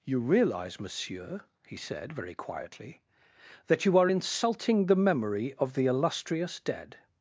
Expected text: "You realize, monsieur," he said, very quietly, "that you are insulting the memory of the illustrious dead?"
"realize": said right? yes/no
yes